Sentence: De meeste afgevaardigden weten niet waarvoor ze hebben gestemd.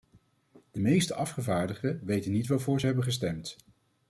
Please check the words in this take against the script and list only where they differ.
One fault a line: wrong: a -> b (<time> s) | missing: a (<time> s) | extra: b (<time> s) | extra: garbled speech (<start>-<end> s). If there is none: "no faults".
no faults